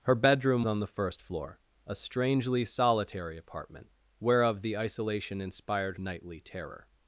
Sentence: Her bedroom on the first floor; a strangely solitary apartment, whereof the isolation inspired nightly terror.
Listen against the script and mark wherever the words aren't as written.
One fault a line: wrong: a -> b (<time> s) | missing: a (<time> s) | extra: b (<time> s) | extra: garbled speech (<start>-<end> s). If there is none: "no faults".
no faults